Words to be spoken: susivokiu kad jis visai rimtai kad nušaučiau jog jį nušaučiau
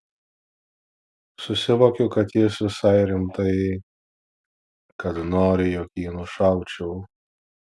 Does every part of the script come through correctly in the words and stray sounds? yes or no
no